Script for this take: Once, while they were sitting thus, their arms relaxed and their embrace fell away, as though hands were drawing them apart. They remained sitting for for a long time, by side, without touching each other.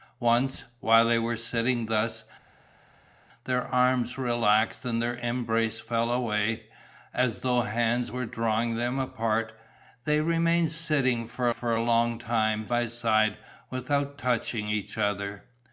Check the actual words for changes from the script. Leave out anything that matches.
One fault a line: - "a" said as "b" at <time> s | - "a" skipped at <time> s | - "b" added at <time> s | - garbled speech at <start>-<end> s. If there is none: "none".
none